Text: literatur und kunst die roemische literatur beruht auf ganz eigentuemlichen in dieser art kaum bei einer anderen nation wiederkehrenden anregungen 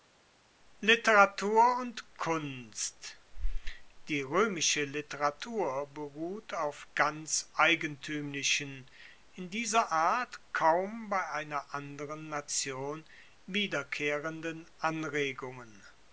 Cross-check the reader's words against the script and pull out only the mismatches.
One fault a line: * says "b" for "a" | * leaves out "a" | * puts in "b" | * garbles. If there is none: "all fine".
all fine